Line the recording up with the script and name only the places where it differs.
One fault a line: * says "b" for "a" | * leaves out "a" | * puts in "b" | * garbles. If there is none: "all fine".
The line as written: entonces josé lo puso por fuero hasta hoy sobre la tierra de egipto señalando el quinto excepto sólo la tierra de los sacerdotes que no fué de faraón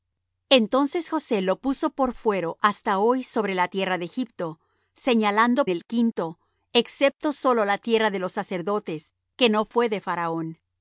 all fine